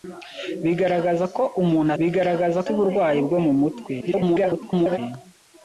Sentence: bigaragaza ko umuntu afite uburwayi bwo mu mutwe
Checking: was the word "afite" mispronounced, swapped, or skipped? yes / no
yes